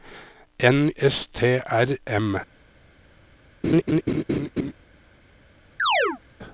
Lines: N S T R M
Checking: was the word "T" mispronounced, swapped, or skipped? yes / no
no